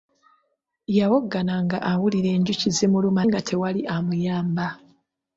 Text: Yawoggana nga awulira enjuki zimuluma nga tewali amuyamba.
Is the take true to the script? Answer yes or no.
yes